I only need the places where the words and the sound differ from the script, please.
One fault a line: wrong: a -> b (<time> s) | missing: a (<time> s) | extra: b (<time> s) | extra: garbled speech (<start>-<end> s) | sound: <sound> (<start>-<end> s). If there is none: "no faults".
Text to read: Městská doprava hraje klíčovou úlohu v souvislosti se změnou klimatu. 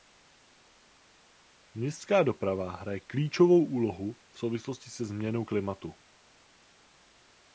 no faults